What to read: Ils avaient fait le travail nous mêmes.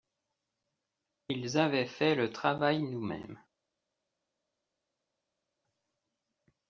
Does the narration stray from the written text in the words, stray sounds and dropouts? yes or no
no